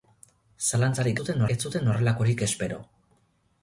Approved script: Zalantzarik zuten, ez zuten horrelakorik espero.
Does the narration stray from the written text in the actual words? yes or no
no